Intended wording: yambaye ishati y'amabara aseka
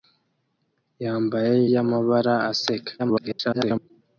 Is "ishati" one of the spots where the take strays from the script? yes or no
yes